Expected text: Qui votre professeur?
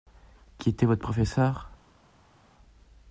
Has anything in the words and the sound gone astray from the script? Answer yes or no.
yes